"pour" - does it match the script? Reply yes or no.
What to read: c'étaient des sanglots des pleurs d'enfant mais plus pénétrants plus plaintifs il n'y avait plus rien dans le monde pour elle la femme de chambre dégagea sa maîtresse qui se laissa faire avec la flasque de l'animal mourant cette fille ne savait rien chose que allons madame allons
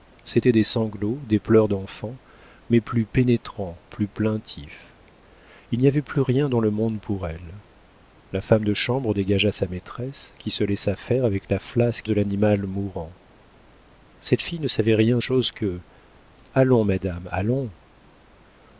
yes